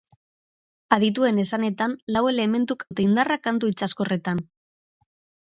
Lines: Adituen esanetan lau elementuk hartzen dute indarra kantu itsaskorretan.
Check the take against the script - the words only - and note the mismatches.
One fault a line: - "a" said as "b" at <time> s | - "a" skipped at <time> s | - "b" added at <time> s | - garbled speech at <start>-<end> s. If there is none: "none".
- "hartzen" skipped at 2.9 s